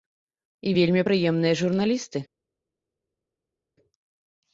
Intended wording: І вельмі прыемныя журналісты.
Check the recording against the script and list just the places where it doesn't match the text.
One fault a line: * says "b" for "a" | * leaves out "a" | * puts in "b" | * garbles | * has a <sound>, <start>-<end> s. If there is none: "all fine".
all fine